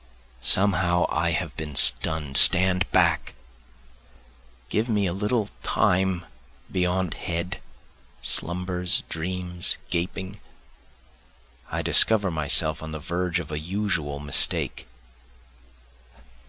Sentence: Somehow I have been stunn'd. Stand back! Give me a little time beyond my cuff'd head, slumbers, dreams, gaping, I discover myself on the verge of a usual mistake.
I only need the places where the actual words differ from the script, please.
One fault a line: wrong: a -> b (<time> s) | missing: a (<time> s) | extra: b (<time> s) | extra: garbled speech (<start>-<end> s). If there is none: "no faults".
missing: my cuff'd (7.1 s)